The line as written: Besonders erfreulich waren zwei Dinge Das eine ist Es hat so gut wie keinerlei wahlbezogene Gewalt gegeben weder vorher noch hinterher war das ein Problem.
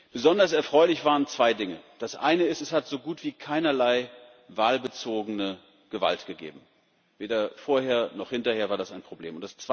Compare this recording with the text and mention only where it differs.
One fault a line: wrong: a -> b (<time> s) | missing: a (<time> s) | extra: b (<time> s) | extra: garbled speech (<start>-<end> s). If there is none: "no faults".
no faults